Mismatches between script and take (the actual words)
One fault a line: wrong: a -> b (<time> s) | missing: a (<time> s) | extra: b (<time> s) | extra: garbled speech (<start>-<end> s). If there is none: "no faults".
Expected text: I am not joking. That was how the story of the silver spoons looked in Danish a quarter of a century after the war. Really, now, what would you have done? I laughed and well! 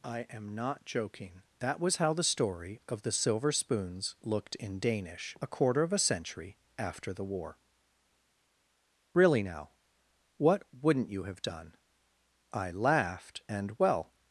wrong: would -> wouldn't (10.7 s)